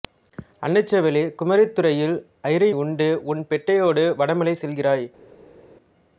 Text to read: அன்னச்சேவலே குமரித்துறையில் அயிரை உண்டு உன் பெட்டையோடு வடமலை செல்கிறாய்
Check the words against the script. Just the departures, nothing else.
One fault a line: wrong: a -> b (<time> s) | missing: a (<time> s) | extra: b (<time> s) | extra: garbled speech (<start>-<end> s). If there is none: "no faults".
no faults